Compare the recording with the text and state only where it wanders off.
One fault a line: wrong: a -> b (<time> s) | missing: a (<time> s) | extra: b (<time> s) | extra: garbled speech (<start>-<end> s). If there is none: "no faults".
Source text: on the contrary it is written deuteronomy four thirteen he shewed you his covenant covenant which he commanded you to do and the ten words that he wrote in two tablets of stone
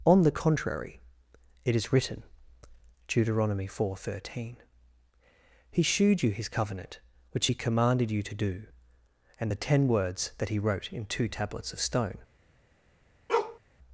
missing: covenant (7.0 s)